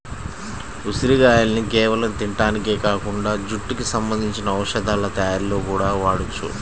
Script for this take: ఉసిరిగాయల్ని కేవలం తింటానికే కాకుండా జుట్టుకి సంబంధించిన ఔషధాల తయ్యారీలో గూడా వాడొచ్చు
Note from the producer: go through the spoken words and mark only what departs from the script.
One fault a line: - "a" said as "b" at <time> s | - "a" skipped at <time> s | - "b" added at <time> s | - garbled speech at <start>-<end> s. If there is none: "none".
none